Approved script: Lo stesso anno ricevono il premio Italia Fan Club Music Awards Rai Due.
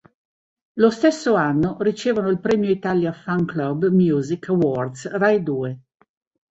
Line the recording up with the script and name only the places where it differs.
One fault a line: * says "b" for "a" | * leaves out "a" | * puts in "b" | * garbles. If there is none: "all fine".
all fine